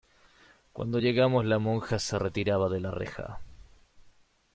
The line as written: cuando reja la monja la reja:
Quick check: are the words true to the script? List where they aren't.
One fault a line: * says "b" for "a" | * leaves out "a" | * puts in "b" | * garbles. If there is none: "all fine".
* says "llegamos" for "reja"
* puts in "se retiraba de"